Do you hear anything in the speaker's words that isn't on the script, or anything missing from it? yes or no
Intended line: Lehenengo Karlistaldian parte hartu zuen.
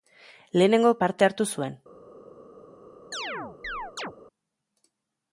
yes